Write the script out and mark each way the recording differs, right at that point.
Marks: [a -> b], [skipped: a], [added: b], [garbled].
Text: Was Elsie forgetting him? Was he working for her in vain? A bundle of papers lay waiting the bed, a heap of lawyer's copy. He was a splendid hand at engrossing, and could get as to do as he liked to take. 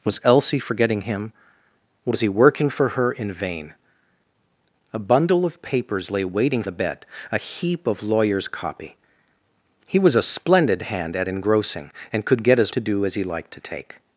Was Elsie forgetting him? Was he working for her in vain? A bundle of papers lay waiting the bed, a heap of lawyer's copy. He was a splendid hand at engrossing, and could get as to do as he liked to take.